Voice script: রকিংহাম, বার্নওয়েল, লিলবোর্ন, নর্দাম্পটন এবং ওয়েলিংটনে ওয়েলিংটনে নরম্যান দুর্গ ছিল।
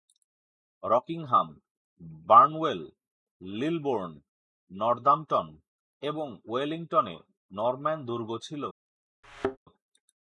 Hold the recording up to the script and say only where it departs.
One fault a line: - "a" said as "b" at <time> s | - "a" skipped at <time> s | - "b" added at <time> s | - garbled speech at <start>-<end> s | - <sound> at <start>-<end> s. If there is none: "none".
- "ওয়েলিংটনে" skipped at 7.2 s
- thud at 9.2-9.6 s